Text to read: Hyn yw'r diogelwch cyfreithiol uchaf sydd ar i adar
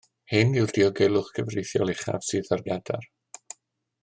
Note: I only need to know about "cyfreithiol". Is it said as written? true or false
true